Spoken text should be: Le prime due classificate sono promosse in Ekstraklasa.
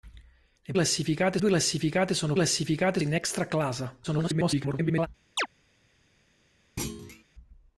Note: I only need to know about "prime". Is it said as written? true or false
false